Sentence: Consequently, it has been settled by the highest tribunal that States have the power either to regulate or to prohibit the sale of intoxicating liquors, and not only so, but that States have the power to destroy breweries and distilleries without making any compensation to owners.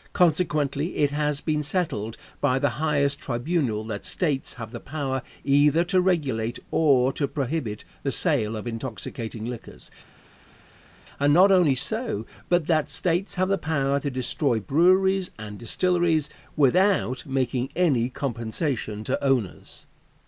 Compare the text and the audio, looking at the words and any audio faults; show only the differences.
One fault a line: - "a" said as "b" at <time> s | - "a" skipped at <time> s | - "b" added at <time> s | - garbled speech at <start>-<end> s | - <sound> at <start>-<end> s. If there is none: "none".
none